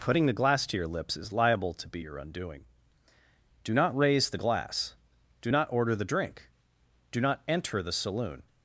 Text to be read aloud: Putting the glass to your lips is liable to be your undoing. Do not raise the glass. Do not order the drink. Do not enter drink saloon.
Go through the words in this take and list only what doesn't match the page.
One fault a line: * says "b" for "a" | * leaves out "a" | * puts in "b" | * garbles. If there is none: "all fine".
* says "the" for "drink"